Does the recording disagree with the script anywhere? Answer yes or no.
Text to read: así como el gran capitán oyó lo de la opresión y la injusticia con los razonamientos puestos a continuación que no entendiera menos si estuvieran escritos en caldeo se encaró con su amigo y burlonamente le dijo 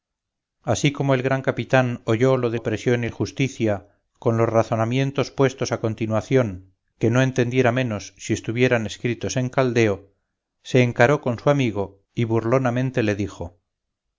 yes